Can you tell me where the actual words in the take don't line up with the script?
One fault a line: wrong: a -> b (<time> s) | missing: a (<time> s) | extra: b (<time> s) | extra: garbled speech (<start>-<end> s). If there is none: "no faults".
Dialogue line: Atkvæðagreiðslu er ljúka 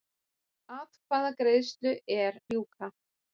no faults